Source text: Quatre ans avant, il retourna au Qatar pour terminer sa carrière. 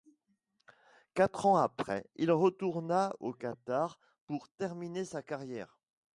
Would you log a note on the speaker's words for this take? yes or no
yes